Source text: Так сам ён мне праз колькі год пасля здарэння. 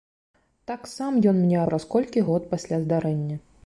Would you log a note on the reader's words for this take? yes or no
no